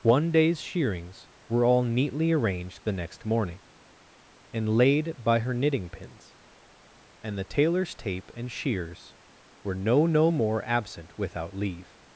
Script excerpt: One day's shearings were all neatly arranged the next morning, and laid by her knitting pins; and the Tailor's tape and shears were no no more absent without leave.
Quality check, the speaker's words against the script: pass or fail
pass